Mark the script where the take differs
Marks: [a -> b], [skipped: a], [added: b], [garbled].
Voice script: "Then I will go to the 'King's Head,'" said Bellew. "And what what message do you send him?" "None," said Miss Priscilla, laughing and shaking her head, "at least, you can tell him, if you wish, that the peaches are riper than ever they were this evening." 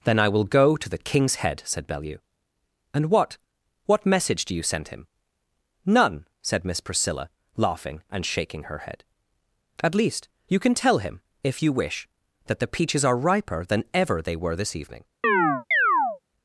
"Then I will go to the 'King's Head,'" said Bellew. "And what what message do you send him?" "None," said Miss Priscilla, laughing and shaking her head, "at least, you can tell him, if you wish, that the peaches are riper than ever they were this evening."